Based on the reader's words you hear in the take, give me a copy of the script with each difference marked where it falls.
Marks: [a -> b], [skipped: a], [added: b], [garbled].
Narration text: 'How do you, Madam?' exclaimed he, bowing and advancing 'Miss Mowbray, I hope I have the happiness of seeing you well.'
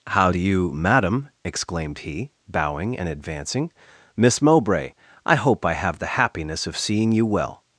'How do you, Madam?' exclaimed he, bowing and advancing 'Miss Mowbray, I hope I have the happiness of seeing you well.'